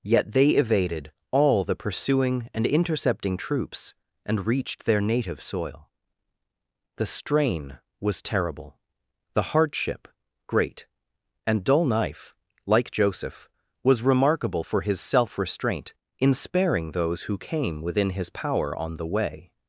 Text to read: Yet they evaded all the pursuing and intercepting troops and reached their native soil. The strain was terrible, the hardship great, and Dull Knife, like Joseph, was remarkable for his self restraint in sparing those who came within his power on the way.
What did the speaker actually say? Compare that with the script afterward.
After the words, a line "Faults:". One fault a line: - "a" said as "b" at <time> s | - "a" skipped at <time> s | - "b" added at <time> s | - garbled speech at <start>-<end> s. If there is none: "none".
Yet they evaded all the pursuing and intercepting troops and reached their native soil. The strain was terrible, the hardship great, and Dull Knife, like Joseph, was remarkable for his self restraint in sparing those who came within his power on the way.
Faults:
none